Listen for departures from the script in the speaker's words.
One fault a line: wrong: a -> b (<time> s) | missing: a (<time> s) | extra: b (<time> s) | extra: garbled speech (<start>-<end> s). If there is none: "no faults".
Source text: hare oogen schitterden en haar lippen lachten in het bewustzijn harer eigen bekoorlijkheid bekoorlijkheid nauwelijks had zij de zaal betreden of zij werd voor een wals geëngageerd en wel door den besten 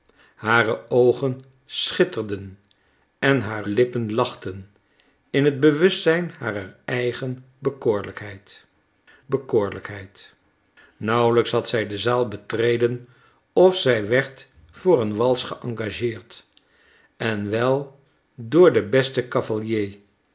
no faults